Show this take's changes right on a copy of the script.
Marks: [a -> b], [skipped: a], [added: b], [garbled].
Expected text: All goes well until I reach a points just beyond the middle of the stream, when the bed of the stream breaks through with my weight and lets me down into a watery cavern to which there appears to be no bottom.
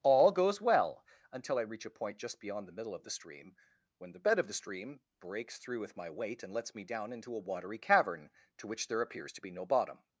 All goes well until I reach a [points -> point] just beyond the middle of the stream, when the bed of the stream breaks through with my weight and lets me down into a watery cavern to which there appears to be no bottom.